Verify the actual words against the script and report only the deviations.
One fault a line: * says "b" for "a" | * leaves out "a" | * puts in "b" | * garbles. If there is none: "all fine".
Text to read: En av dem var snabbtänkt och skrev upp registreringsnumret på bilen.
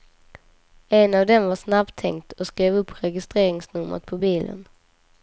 all fine